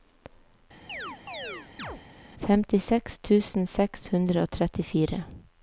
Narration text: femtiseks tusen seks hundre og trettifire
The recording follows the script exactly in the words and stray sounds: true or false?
false